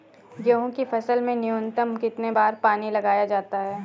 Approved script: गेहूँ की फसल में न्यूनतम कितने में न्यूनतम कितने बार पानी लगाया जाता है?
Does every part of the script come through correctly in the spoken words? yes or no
no